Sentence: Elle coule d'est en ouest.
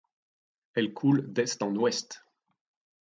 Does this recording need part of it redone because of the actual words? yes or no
no